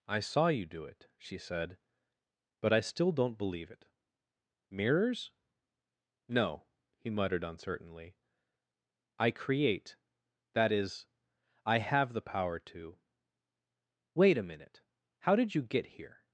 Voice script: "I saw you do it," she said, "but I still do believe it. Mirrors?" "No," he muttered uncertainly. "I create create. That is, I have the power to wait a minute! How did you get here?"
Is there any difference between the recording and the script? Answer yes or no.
yes